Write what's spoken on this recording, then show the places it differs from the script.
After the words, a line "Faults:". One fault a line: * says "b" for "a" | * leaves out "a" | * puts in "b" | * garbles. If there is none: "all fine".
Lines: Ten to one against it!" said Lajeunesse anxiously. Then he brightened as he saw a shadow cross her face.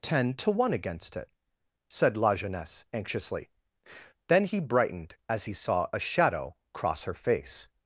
Ten to one against it!" said Lajeunesse anxiously. Then he brightened as he saw a shadow cross her face.
Faults:
all fine